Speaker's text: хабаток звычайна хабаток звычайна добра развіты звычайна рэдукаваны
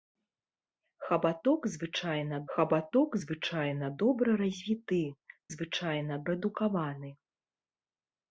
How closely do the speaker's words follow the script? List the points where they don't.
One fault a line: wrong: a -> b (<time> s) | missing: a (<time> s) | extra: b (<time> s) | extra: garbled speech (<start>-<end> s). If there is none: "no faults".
no faults